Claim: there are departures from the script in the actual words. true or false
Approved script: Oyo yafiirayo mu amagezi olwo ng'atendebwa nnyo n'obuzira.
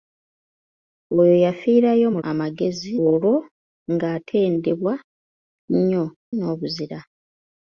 false